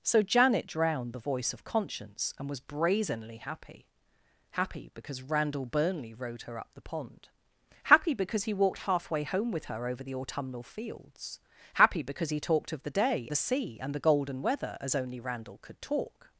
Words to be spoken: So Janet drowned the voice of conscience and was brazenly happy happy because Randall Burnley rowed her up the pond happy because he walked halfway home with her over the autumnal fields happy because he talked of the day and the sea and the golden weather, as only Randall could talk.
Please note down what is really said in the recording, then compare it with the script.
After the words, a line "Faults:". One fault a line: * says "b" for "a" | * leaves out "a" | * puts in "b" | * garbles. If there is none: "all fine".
So Janet drowned the voice of conscience and was brazenly happy happy because Randall Burnley rowed her up the pond happy because he walked halfway home with her over the autumnal fields happy because he talked of the day the sea and the golden weather, as only Randall could talk.
Faults:
* leaves out "and"